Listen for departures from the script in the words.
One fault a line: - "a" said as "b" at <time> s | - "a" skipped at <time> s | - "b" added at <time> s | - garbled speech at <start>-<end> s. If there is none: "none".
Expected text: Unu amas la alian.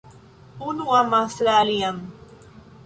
none